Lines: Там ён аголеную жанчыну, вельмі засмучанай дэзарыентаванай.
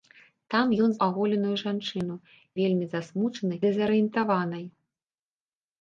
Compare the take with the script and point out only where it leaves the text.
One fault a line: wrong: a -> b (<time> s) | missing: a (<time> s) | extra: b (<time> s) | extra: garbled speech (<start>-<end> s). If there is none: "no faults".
no faults